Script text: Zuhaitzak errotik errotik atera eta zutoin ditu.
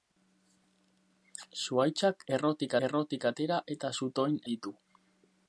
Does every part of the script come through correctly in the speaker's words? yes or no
yes